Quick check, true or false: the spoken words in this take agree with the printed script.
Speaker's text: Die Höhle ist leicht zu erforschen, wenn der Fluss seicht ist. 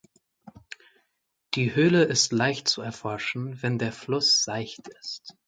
true